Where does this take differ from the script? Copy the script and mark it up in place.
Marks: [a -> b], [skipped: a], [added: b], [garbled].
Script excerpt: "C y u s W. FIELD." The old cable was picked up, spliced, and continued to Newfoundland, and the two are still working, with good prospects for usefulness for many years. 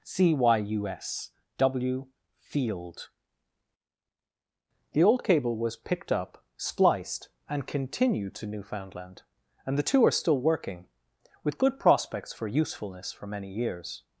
"C y u s W. FIELD." The old cable was picked up, spliced, and continued to Newfoundland, and the two are still working, with good prospects for usefulness for many years.